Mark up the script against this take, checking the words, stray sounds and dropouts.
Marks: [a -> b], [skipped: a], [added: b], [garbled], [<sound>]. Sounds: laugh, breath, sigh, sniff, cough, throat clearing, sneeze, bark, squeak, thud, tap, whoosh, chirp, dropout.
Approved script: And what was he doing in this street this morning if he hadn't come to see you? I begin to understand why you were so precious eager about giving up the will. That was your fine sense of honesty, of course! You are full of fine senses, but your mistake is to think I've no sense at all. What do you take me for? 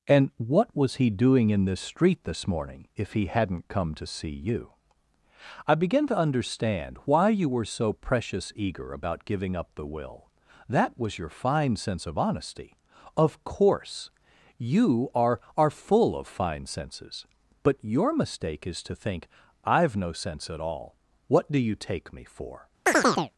And what was he doing in this street this morning if he hadn't come to see you? I begin to understand why you were so precious eager about giving up the will. That was your fine sense of honesty, of course! You are [added: are] full of fine senses, but your mistake is to think I've no sense at all. What do you take me for? [chirp]